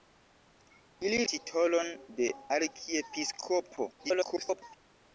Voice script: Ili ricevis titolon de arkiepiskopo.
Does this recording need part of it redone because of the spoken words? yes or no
yes